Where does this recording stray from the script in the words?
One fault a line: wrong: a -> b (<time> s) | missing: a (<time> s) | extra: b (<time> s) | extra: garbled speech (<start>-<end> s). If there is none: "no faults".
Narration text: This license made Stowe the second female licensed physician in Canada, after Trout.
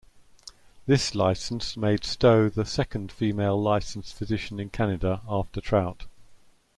no faults